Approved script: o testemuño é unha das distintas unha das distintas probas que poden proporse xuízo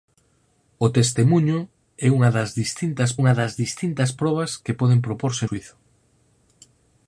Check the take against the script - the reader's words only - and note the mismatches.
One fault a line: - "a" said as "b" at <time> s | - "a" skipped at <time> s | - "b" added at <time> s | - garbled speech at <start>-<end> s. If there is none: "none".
none